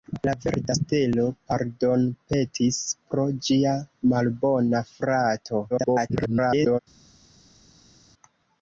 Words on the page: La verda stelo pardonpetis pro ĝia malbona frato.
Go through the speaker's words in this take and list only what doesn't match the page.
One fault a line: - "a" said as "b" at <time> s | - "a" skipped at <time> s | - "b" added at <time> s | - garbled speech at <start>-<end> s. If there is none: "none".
- garbled speech at 5.7-6.8 s